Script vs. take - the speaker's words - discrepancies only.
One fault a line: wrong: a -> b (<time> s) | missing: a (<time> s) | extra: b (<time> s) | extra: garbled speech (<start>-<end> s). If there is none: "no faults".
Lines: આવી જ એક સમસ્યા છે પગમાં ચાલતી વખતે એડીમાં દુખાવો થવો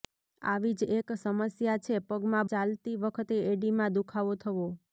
no faults